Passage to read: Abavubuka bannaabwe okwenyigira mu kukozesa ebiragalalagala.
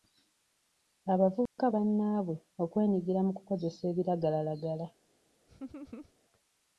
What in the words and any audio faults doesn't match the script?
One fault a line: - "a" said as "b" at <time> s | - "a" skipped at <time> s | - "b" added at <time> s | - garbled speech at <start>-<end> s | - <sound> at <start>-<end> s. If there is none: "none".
- dropout at 1.5-1.6 s
- laugh at 5.5-6.1 s